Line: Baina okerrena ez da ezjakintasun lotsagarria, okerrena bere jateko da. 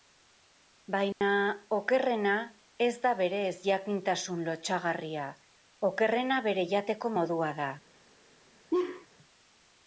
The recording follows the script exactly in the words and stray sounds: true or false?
false